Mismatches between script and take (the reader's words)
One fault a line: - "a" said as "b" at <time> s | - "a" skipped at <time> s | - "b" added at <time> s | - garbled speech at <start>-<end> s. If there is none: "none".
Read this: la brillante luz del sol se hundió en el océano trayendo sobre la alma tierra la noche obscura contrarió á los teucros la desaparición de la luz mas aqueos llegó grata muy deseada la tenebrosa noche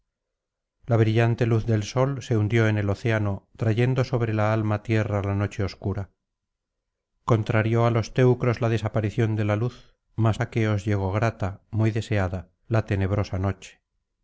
none